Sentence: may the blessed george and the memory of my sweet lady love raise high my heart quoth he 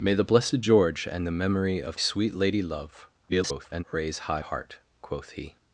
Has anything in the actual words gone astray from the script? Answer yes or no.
yes